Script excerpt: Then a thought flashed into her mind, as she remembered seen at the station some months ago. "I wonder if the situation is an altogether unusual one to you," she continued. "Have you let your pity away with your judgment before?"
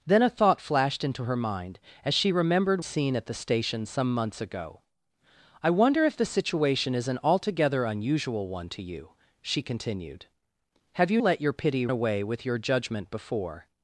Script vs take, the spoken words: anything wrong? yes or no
no